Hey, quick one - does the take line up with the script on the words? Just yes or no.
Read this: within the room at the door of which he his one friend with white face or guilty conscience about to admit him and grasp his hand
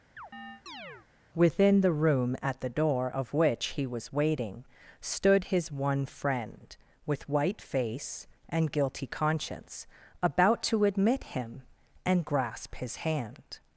no